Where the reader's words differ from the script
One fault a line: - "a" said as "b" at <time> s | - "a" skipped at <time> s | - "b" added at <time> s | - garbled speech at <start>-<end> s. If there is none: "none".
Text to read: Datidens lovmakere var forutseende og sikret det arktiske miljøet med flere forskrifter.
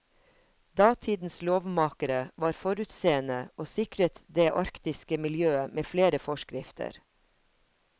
none